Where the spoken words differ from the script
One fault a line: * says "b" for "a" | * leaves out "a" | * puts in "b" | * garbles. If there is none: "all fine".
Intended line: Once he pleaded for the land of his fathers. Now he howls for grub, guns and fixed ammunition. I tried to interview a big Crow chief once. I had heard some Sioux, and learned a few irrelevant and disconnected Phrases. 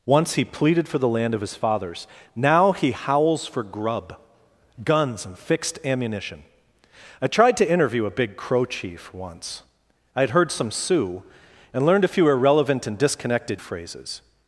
all fine